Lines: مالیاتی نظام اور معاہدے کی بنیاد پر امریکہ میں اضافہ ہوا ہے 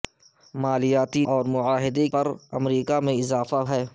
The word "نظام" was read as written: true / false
false